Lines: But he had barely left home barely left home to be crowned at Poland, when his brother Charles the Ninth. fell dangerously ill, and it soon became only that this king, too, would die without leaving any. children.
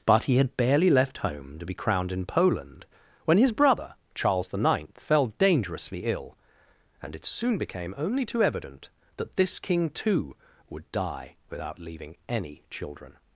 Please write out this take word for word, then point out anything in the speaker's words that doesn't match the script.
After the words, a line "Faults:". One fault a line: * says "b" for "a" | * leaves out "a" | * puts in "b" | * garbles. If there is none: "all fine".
But he had barely left home to be crowned in Poland, when his brother Charles the Ninth. fell dangerously ill, and it soon became only too evident that this king, too, would die without leaving any. children.
Faults:
* leaves out "barely left home"
* says "in" for "at"
* puts in "too evident"